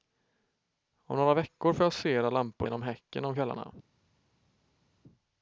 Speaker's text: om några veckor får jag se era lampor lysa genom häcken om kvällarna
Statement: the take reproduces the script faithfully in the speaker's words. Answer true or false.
false